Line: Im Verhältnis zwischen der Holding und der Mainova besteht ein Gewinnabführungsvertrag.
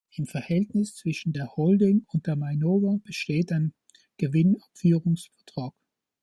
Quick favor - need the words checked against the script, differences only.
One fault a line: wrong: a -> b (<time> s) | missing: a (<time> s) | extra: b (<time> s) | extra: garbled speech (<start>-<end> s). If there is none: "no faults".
no faults